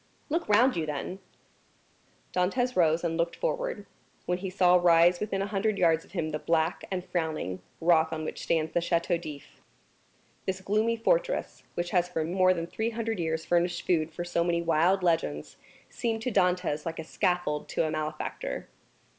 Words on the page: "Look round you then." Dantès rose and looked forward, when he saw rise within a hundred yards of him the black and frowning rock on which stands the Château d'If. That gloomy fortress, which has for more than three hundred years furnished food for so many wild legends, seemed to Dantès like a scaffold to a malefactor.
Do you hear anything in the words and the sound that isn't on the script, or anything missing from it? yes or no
yes